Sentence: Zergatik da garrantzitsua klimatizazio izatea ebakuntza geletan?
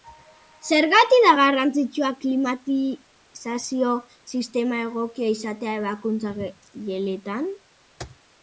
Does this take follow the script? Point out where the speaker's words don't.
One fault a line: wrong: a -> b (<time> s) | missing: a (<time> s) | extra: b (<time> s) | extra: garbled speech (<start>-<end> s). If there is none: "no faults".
extra: sistema egokia (4.4 s)